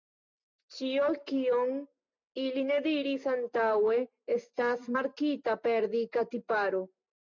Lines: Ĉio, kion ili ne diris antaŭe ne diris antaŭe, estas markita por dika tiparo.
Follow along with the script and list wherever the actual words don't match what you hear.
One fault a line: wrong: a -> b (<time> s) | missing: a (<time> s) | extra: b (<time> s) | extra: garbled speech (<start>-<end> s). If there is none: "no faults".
missing: ne diris antaŭe (4.0 s)
wrong: por -> per (5.7 s)